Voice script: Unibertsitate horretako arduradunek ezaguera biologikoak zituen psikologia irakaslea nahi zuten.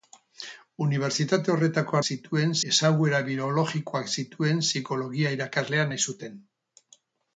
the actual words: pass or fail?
fail